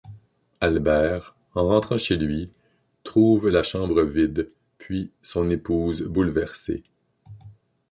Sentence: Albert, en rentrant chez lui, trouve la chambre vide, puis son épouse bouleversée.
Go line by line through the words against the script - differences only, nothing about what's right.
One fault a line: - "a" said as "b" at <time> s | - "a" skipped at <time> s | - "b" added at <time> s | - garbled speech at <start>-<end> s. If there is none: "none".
none